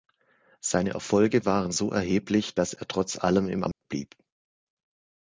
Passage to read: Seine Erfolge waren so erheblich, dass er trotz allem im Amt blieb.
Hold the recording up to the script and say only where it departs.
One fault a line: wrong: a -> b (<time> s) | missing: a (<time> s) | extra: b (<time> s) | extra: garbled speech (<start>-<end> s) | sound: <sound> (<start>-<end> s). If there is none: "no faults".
sound: dropout (3.7-3.8 s)